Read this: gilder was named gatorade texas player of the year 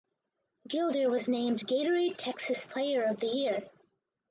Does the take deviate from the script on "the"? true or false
false